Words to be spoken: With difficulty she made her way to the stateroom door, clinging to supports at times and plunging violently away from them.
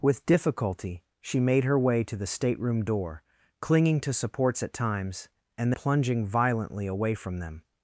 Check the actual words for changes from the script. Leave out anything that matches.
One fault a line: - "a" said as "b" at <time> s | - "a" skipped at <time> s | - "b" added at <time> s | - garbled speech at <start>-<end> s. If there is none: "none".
none